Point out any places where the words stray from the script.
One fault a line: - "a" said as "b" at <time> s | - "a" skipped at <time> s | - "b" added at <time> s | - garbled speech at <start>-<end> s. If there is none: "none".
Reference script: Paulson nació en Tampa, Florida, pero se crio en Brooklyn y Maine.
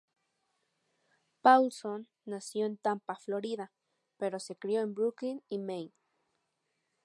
none